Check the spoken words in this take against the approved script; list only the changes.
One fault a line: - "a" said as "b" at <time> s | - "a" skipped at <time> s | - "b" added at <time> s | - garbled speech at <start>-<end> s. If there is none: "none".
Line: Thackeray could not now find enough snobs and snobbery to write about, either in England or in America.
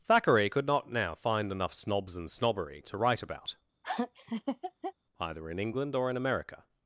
none